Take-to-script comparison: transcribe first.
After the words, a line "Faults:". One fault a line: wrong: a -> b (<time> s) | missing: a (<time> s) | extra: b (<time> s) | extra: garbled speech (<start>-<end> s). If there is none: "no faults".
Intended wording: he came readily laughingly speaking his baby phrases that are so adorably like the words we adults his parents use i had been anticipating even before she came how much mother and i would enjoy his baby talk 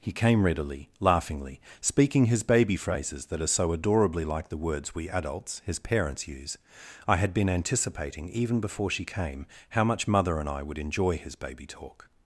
he came readily laughingly speaking his baby phrases that are so adorably like the words we adults his parents use i had been anticipating even before she came how much mother and i would enjoy his baby talk
Faults:
no faults